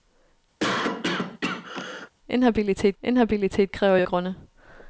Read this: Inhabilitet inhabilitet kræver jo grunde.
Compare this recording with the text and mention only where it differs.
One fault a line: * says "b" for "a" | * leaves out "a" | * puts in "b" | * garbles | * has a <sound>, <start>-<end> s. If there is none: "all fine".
* has a cough, 0.6-2.1 s